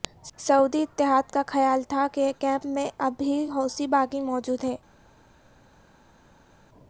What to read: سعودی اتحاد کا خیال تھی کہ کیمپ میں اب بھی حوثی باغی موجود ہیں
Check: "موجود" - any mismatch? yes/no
no